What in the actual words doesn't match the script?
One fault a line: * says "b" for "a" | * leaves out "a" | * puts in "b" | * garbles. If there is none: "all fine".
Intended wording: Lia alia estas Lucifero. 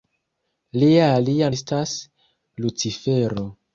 all fine